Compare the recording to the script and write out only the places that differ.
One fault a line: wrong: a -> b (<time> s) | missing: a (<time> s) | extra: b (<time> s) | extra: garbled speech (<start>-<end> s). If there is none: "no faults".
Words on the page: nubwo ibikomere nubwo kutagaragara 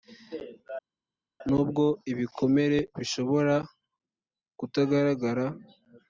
wrong: nubwo -> bishobora (3.0 s)